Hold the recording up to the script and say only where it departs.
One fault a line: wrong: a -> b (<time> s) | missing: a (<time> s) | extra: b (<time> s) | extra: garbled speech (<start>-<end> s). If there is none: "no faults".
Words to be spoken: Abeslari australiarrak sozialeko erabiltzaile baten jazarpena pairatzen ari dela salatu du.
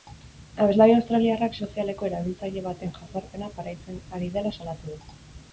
no faults